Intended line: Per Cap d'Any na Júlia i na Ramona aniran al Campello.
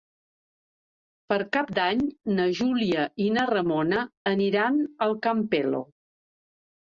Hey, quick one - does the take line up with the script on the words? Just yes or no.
yes